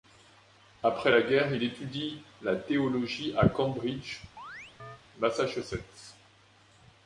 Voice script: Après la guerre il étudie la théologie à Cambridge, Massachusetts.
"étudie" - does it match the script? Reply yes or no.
yes